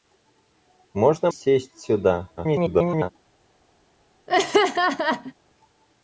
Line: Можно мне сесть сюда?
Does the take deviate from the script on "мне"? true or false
true